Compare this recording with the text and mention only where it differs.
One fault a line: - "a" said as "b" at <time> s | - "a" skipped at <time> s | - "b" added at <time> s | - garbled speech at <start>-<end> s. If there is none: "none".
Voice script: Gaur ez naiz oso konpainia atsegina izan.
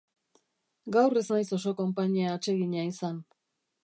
none